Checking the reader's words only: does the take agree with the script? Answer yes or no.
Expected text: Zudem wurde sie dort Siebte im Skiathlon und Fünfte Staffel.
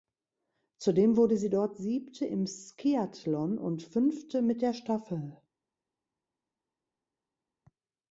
no